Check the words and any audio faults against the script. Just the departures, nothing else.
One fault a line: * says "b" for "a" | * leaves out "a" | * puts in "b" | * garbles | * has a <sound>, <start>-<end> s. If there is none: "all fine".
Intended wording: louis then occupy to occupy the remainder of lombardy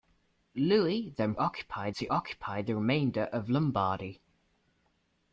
all fine